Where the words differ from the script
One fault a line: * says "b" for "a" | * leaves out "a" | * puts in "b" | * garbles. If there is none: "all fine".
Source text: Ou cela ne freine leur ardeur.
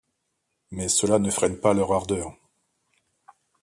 * says "Mais" for "Ou"
* puts in "pas"